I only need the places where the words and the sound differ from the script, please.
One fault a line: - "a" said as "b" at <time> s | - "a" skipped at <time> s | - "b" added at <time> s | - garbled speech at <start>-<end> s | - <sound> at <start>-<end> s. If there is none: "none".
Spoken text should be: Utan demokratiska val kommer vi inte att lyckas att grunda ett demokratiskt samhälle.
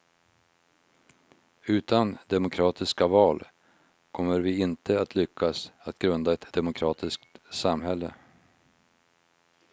none